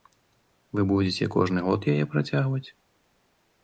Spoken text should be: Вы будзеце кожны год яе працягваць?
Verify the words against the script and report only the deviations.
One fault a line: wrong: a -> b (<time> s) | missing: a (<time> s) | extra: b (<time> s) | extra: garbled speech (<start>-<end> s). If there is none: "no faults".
no faults